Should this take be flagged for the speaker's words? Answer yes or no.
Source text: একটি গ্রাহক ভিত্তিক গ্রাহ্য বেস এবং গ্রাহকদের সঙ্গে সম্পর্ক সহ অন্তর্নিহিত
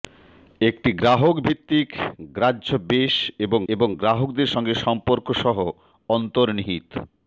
yes